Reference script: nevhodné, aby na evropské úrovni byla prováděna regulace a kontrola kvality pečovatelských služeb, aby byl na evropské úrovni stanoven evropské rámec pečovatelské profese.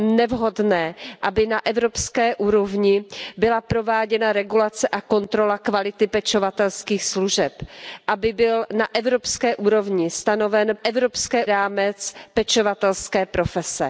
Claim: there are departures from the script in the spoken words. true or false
false